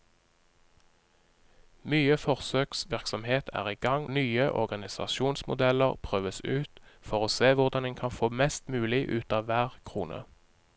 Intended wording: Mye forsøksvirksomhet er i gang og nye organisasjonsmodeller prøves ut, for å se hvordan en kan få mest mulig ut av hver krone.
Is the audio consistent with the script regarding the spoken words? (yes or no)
no